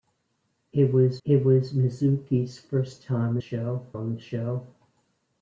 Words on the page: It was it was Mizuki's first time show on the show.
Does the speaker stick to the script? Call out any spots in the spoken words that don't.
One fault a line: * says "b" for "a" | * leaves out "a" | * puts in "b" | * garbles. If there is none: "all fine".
all fine